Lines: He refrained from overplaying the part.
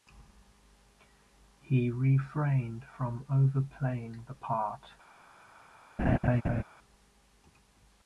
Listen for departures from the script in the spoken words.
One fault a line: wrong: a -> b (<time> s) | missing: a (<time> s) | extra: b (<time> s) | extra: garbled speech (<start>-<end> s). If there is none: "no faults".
no faults